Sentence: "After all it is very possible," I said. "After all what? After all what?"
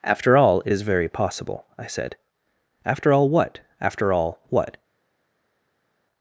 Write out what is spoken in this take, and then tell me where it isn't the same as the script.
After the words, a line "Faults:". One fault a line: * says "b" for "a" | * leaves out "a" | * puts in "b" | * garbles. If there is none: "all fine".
"After all it is very possible," I said. "After all what? After all what?"
Faults:
all fine